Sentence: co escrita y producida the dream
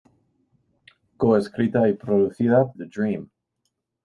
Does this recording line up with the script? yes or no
yes